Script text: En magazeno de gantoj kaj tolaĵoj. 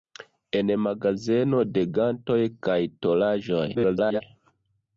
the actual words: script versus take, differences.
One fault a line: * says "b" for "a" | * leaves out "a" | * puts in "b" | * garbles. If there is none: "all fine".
* garbles